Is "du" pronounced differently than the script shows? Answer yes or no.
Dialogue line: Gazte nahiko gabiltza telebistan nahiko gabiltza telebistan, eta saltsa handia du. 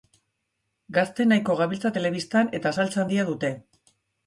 yes